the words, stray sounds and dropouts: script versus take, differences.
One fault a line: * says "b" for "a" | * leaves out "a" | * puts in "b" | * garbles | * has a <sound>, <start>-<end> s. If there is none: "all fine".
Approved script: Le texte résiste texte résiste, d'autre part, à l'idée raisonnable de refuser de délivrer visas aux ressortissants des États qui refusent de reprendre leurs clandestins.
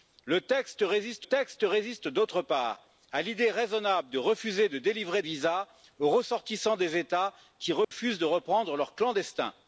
* has a dropout, 7.8-7.9 s